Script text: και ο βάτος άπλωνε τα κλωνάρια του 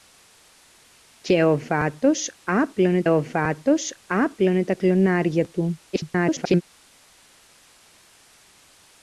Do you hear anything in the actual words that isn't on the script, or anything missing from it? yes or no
yes